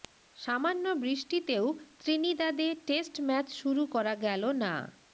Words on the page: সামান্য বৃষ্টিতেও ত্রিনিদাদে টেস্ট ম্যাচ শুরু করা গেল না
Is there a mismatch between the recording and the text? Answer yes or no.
no